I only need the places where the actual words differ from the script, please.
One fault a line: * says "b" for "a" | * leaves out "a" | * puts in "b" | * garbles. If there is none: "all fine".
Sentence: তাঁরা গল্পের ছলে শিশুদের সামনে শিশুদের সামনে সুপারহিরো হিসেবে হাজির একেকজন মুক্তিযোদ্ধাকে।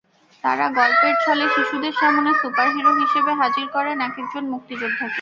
* leaves out "শিশুদের সামনে"
* puts in "করেন"